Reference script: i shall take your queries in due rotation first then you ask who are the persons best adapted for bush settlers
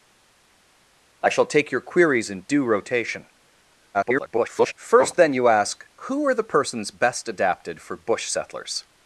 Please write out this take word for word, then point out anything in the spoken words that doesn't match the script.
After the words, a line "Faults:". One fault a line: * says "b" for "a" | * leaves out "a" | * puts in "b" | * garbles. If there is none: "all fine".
i shall take your queries in due rotation [garbled] first then you ask who are the persons best adapted for bush settlers
Faults:
* garbles